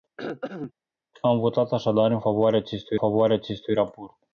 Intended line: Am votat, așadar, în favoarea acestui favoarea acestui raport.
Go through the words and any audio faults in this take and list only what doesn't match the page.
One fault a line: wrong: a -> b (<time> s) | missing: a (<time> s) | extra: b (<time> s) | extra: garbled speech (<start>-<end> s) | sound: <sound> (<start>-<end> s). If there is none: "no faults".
sound: throat clearing (0.2-0.7 s)